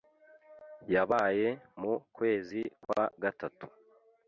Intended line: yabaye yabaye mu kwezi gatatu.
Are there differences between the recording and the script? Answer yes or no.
yes